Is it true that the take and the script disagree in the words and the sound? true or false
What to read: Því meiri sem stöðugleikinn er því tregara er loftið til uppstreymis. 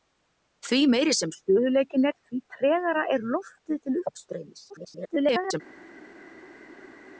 true